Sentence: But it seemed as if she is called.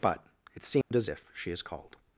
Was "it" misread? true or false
false